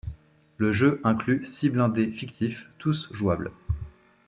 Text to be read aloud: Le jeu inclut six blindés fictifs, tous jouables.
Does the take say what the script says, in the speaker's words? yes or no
yes